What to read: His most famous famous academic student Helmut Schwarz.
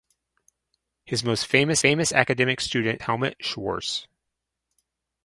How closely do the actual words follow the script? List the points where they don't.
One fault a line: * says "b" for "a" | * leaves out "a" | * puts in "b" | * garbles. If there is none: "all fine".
all fine